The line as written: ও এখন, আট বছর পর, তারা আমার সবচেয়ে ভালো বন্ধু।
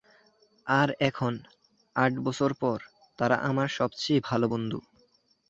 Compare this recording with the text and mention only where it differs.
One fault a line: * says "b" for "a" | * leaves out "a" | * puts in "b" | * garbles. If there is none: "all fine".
* says "আর" for "ও"